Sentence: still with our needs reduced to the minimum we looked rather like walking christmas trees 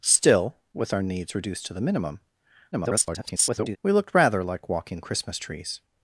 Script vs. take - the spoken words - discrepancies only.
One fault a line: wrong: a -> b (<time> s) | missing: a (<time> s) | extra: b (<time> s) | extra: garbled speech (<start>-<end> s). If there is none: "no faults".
extra: garbled speech (2.7-3.8 s)